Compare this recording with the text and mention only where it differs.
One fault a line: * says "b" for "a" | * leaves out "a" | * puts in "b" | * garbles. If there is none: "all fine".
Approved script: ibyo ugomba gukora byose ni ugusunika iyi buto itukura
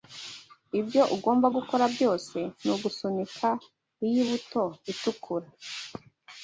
all fine